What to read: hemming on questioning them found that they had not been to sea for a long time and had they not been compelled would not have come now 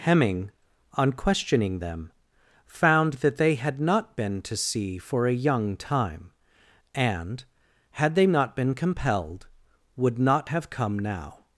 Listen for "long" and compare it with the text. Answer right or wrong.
wrong